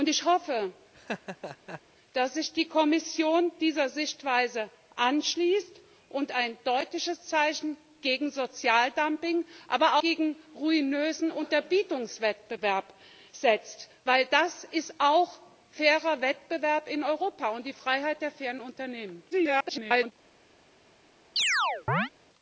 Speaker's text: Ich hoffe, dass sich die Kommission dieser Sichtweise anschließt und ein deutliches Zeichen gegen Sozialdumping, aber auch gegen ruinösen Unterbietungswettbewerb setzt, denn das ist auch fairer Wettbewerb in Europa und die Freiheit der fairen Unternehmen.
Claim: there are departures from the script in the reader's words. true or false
true